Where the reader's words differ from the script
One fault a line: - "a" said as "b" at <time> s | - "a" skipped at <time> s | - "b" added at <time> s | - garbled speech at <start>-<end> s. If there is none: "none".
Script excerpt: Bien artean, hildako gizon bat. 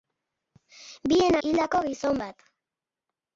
- "artean" skipped at 1.4 s